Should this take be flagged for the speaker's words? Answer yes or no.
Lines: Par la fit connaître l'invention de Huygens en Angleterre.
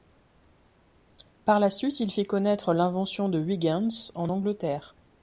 yes